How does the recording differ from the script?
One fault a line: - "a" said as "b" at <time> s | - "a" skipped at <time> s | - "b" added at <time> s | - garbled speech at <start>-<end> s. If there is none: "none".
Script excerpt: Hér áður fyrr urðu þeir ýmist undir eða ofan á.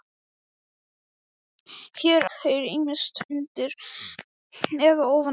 - "áður fyrr urðu" skipped at 2.2 s